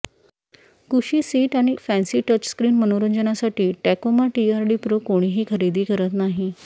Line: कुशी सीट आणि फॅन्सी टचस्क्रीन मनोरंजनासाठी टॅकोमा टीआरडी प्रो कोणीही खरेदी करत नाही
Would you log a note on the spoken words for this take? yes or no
no